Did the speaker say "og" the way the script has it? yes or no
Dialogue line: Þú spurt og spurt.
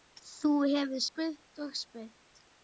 yes